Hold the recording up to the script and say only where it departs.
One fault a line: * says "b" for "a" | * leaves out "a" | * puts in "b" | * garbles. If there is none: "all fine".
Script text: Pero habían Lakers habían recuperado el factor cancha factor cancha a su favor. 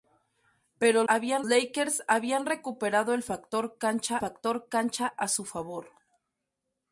all fine